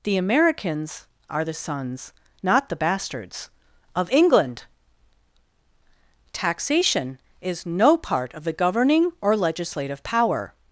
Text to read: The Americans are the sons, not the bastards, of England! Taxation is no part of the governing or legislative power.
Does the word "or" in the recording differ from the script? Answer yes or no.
no